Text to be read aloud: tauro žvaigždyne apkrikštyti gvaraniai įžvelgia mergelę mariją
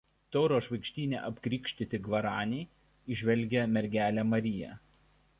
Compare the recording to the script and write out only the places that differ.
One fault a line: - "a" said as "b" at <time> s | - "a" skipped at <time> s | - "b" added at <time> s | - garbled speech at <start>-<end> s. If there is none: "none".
none